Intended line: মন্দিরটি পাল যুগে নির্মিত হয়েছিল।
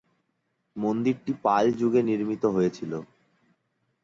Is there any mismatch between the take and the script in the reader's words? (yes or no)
no